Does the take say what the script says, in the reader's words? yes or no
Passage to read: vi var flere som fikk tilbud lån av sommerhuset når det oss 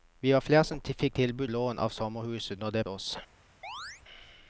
yes